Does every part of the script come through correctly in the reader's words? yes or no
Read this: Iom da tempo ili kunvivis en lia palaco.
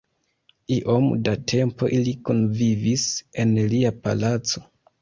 yes